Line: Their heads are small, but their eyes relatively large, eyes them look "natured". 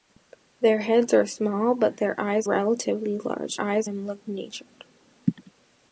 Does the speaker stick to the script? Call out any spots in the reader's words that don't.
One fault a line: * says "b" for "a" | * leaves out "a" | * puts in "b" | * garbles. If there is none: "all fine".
all fine